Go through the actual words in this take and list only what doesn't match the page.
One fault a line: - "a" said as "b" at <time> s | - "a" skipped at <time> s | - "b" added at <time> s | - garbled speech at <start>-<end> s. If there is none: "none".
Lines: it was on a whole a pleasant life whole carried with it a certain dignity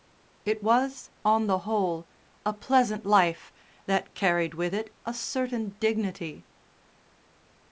- "a" said as "the" at 1.4 s
- "whole" said as "that" at 3.9 s